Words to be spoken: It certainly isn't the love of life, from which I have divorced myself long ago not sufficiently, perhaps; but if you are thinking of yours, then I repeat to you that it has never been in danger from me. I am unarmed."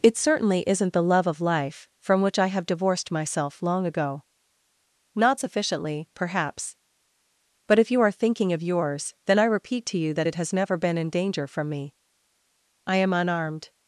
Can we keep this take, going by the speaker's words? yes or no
yes